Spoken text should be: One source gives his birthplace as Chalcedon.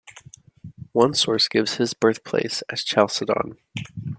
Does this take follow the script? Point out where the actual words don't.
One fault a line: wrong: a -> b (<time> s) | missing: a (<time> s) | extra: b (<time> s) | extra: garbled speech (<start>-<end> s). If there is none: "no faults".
no faults